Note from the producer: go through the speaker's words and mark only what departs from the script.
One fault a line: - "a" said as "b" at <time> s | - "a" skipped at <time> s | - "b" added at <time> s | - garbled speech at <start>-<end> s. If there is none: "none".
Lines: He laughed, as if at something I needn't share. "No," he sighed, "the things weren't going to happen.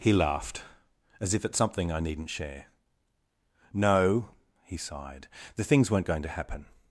none